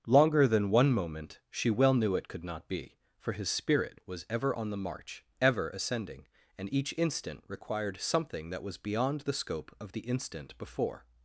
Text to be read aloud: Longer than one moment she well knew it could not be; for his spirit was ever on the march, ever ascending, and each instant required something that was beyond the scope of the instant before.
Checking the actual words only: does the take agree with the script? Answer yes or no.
yes